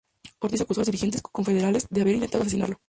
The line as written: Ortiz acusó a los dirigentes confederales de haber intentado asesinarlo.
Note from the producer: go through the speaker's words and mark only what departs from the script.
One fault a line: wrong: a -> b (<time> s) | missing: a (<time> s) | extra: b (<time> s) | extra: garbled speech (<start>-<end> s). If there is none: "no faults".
no faults